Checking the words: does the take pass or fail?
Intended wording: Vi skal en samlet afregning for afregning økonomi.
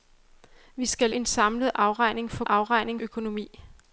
pass